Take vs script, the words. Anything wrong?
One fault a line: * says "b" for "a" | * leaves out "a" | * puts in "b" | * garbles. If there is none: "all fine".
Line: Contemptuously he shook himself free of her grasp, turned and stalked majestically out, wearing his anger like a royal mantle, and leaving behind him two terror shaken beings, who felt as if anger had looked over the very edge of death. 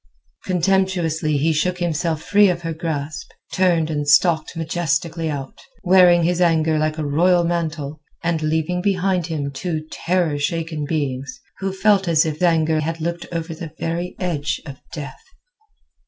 all fine